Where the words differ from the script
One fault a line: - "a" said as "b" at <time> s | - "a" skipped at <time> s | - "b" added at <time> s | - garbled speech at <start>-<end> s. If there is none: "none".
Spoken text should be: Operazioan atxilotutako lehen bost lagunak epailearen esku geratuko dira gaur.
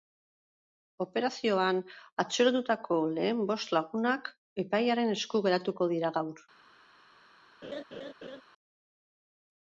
none